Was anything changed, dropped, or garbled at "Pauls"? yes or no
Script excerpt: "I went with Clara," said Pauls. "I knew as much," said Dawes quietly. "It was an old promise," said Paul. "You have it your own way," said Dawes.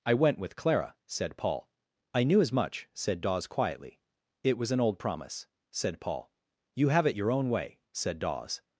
yes